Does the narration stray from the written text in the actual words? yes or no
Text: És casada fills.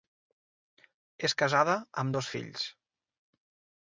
yes